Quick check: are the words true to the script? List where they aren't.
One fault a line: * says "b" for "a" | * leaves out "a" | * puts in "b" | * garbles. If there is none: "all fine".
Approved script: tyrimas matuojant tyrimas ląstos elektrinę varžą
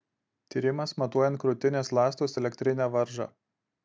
* says "krūtinės" for "tyrimas"